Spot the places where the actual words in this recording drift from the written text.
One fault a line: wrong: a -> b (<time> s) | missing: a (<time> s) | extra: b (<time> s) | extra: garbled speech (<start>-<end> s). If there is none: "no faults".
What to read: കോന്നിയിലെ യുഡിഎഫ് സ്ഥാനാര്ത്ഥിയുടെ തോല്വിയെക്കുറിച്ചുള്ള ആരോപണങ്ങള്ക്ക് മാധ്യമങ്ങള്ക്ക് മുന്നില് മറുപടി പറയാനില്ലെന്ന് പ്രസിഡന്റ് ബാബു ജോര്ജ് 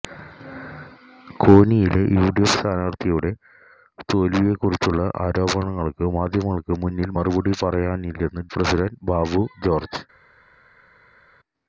no faults